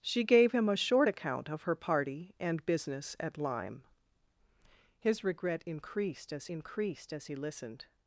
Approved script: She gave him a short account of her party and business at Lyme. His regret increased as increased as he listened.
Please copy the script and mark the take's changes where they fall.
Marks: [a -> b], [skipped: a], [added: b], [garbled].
She gave him a short account of her party and business at Lyme. His regret increased as increased as he listened.